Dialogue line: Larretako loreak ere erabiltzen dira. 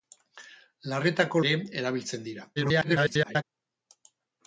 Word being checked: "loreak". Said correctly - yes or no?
no